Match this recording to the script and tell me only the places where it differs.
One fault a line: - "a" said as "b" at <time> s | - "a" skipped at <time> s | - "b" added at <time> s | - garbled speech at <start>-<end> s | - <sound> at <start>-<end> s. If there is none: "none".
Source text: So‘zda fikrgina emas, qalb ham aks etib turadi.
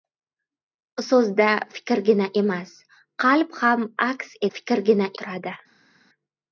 - "etib" said as "fikrgina" at 4.6 s